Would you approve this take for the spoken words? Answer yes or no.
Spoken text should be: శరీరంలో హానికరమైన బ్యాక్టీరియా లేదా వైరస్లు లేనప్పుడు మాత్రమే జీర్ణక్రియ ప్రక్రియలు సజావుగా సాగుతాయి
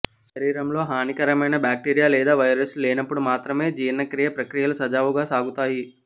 yes